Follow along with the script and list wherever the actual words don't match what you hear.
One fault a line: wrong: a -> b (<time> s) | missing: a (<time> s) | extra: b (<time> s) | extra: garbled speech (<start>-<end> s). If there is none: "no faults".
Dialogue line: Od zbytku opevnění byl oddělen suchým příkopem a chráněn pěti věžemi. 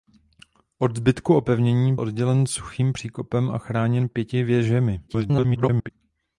missing: byl (1.9 s)
extra: garbled speech (5.1-5.9 s)